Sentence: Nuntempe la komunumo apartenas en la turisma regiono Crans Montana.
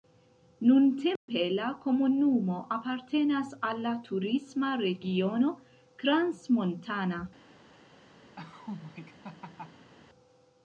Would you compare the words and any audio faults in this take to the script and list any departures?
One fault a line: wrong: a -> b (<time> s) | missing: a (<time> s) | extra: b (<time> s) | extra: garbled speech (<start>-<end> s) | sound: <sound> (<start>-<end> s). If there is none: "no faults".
sound: dropout (1.2-1.3 s)
wrong: en -> al (3.7 s)
sound: laugh (8.4-9.9 s)